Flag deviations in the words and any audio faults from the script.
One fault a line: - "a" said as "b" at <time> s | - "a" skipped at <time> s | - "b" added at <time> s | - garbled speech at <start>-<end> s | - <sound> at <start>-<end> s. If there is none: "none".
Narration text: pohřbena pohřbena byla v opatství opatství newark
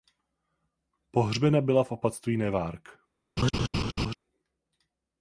- "pohřbena" skipped at 1.6 s
- "opatství" skipped at 2.4 s
- laugh at 3.4-4.1 s